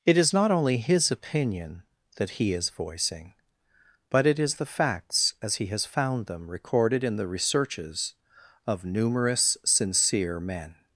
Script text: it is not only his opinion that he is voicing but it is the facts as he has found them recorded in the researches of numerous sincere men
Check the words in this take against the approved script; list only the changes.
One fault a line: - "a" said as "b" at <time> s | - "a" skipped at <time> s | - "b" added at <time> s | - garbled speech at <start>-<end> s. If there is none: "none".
none